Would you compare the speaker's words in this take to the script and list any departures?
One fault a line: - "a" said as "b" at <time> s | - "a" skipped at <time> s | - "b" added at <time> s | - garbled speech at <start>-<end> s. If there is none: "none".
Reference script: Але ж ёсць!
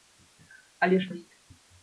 none